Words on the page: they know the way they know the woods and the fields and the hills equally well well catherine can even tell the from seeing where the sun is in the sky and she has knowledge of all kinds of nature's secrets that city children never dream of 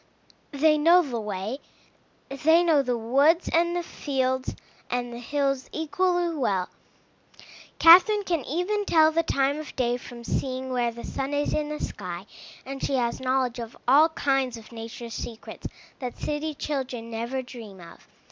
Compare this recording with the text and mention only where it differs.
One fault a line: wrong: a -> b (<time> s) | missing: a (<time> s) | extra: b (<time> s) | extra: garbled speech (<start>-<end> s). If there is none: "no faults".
missing: well (6.7 s)
extra: time of day (9.2 s)